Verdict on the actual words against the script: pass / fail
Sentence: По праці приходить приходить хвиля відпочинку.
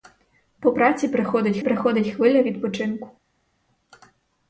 pass